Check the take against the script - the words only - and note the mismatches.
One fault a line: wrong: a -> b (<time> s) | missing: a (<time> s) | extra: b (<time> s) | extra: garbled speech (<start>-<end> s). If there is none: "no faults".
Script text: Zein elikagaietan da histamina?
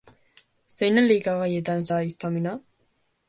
no faults